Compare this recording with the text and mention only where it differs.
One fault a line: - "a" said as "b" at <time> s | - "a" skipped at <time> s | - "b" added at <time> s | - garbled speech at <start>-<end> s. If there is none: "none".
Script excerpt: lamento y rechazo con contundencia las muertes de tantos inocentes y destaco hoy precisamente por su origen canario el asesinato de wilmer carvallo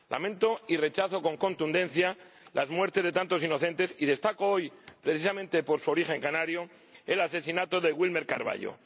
none